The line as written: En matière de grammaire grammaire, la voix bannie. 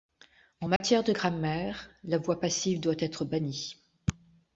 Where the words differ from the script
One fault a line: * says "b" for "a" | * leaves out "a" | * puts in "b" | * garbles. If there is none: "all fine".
* leaves out "grammaire"
* puts in "passive doit être"